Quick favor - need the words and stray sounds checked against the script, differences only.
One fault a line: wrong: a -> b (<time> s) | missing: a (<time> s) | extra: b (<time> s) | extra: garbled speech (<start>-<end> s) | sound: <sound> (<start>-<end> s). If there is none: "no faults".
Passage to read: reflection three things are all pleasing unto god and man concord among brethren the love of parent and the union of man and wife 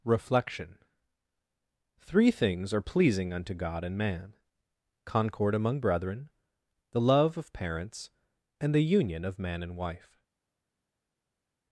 missing: all (2.8 s)
wrong: parent -> parents (7.5 s)